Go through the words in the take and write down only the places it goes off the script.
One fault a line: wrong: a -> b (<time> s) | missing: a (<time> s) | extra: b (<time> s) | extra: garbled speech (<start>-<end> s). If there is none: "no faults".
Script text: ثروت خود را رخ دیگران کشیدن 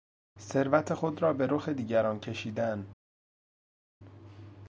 extra: به (1.3 s)